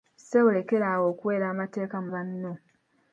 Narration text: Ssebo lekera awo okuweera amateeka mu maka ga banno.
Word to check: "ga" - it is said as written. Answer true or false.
false